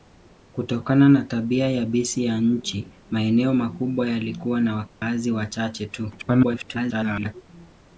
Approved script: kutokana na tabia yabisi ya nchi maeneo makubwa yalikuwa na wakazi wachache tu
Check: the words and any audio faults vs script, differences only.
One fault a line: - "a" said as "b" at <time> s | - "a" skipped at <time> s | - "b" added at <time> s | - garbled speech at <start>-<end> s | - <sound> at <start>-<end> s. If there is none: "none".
- dropout at 4.9-5.0 s
- garbled speech at 6.2-7.3 s